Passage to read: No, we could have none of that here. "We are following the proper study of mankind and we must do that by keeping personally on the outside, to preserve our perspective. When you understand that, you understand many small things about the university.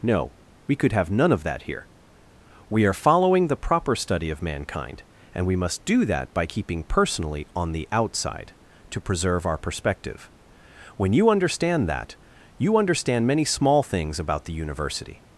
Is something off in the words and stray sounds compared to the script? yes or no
no